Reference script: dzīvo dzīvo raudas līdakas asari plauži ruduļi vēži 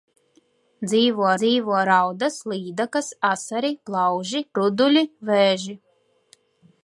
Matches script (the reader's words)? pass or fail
pass